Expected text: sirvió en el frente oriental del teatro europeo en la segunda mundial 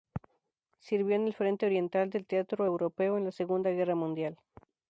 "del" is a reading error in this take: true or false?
false